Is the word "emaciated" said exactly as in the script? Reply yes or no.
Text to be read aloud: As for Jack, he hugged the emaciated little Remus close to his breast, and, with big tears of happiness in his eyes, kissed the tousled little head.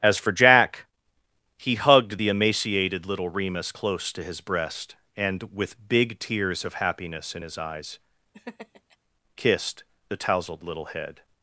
yes